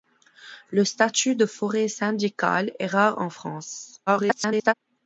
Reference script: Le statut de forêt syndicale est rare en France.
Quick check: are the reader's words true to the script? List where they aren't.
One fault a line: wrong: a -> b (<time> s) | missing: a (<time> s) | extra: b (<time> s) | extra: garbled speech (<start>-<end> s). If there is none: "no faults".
extra: garbled speech (4.1-4.7 s)